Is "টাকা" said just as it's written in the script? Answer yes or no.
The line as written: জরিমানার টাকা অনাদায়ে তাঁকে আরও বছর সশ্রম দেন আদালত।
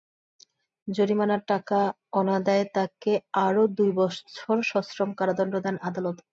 yes